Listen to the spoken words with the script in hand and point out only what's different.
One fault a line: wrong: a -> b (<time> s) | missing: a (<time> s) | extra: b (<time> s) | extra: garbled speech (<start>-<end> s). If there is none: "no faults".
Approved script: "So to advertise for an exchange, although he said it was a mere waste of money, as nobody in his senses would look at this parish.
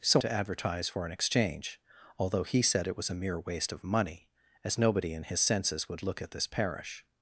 no faults